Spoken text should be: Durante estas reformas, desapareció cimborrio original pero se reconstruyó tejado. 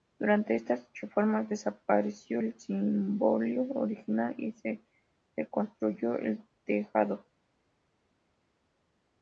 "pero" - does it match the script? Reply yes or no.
no